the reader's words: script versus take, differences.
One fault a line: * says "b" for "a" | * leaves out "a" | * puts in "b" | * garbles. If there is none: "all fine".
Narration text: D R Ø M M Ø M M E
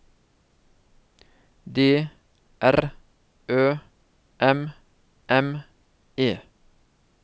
* leaves out "Ø M M"